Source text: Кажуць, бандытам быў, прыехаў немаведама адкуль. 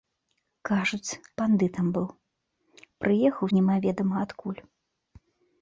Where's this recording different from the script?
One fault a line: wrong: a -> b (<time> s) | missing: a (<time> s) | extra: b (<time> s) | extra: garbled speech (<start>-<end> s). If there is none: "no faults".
no faults